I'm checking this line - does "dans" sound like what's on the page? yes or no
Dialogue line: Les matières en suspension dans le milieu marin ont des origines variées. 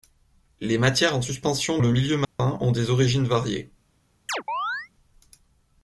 no